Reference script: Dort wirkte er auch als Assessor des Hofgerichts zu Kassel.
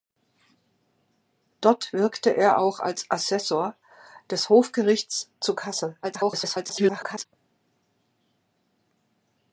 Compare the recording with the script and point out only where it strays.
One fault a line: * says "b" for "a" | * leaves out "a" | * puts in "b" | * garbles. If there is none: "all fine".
* garbles